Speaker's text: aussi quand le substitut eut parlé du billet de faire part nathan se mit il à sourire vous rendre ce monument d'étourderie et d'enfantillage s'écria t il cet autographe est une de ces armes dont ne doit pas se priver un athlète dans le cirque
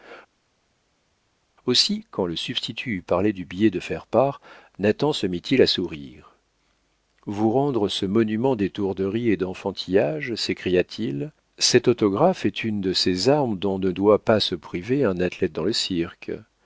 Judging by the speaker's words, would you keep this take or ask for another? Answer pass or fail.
pass